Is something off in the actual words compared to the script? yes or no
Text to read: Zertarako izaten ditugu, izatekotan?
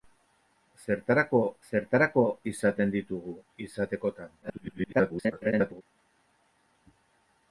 yes